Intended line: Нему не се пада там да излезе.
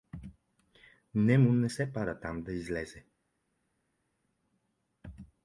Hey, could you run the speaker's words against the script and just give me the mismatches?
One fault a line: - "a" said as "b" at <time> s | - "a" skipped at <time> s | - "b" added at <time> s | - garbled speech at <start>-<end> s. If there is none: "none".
none